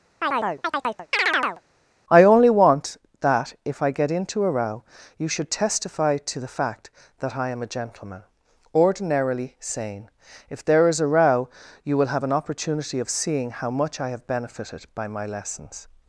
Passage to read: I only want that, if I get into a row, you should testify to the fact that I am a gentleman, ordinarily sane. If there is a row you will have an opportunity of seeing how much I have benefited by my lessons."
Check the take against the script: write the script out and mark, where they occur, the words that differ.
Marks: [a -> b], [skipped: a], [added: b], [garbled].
I only want that, if I get into a row, you should testify to the fact that I am a gentleman, ordinarily sane. If there is a row you will have an opportunity of seeing how much I have benefited by my lessons."